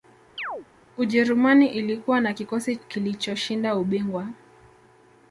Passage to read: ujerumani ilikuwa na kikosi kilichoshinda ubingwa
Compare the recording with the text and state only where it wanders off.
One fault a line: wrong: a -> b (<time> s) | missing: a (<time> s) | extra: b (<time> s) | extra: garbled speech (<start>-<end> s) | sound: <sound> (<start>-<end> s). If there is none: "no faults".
sound: chirp (0.4-0.7 s)